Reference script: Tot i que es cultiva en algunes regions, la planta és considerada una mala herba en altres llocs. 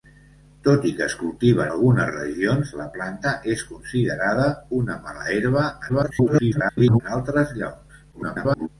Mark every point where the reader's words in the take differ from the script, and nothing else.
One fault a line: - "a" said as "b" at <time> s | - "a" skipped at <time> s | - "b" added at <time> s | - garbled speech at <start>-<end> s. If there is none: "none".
- "en" skipped at 1.7 s
- garbled speech at 5.9-7.0 s
- garbled speech at 8.1-8.7 s